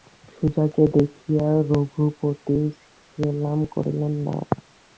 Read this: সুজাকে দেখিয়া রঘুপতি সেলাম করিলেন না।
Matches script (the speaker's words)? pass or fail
pass